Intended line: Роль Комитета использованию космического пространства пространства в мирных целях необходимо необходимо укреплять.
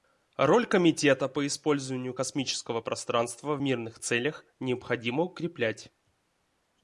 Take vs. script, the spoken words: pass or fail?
fail